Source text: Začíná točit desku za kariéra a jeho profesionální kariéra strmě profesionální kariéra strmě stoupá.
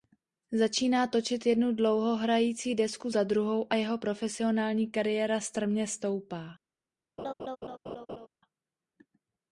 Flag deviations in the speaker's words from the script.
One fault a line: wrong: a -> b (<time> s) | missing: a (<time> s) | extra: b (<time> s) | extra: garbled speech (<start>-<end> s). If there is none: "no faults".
extra: jednu dlouhohrající (1.4 s)
wrong: kariéra -> druhou (3.2 s)
missing: profesionální kariéra strmě (5.9 s)